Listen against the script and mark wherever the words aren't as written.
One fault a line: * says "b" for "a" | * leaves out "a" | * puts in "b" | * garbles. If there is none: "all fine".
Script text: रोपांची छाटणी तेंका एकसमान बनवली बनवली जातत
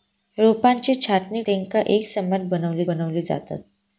all fine